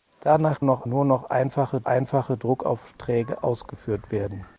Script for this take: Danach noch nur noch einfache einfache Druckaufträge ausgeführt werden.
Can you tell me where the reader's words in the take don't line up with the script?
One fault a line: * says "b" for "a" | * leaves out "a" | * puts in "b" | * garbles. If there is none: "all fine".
all fine